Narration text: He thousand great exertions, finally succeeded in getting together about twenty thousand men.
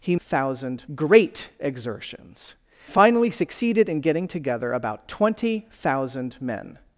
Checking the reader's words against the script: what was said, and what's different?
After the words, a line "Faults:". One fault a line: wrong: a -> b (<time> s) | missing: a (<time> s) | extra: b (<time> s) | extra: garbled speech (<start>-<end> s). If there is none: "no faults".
He thousand great exertions, finally succeeded in getting together about twenty thousand men.
Faults:
no faults